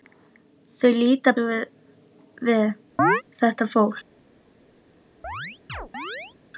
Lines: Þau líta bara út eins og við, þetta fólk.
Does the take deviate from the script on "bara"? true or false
true